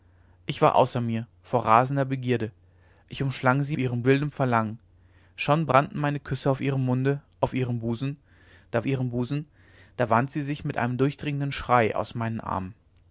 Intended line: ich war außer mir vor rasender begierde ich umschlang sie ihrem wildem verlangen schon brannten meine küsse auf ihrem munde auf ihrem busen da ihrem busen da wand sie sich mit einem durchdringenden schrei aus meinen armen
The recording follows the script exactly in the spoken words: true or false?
true